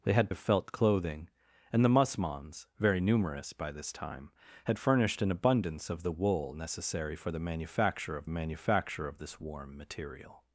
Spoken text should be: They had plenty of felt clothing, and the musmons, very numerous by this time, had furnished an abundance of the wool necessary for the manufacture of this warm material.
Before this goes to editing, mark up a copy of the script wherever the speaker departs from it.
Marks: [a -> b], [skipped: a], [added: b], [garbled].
They had [skipped: plenty] of felt clothing, and the musmons, very numerous by this time, had furnished an abundance of the wool necessary for the manufacture of [added: manufacture of] this warm material.